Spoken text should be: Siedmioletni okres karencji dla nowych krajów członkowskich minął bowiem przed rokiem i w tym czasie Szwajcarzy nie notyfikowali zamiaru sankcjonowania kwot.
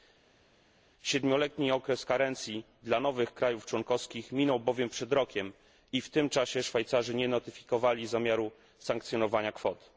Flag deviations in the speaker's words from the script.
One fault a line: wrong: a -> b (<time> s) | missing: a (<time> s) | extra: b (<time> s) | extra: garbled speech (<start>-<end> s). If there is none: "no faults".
no faults